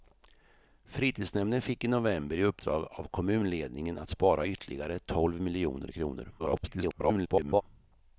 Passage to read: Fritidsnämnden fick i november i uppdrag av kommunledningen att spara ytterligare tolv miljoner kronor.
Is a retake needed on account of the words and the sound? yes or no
yes